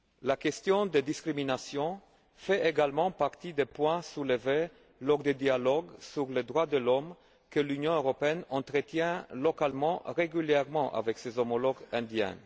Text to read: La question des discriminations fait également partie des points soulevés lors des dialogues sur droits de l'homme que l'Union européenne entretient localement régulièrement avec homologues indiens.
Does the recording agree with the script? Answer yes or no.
no